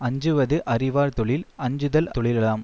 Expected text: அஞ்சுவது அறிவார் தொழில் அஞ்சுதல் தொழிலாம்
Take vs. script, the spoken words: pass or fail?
pass